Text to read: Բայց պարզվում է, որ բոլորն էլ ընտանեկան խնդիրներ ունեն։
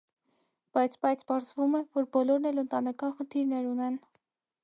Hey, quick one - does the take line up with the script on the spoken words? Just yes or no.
no